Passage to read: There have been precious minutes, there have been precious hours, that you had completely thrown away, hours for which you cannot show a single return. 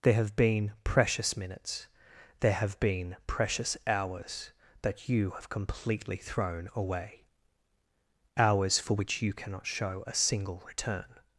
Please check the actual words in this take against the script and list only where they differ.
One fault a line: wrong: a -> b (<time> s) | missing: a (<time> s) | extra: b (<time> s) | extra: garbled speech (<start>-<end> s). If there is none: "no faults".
wrong: had -> have (5.3 s)